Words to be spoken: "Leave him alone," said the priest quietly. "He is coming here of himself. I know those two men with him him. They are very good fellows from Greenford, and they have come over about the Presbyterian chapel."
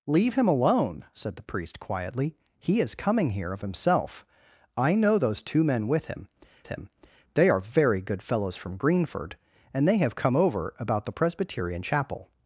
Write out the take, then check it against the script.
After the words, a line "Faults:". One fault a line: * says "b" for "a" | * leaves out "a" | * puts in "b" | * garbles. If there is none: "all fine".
"Leave him alone," said the priest quietly. "He is coming here of himself. I know those two men with him him. They are very good fellows from Greenford, and they have come over about the Presbyterian chapel."
Faults:
all fine